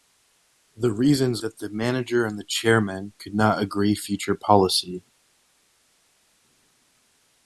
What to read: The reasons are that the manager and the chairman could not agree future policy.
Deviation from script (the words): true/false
true